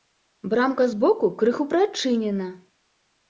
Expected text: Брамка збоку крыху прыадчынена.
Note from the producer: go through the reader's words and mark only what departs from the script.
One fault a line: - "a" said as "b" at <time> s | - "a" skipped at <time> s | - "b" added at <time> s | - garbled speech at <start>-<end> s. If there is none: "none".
none